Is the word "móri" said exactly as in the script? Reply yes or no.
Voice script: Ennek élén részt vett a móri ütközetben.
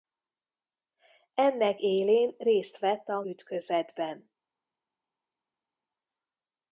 no